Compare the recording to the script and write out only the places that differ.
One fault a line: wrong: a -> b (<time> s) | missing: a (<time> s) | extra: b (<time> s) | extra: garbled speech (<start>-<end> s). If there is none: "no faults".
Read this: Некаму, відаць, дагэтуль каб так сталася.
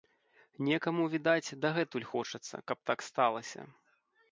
extra: хочацца (2.1 s)